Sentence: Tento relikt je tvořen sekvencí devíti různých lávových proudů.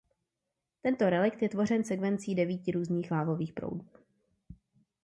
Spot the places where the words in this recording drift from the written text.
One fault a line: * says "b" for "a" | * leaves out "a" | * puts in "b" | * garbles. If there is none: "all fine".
all fine